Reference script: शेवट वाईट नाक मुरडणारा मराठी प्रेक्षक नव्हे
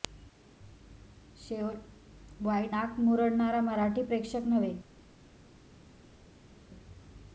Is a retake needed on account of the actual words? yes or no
no